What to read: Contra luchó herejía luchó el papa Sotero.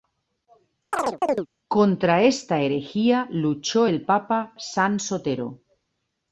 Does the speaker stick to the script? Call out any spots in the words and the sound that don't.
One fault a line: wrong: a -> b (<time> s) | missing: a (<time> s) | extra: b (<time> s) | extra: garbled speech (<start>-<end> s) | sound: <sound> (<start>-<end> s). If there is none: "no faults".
sound: chirp (0.9-1.5 s)
wrong: luchó -> esta (2.2 s)
extra: San (4.6 s)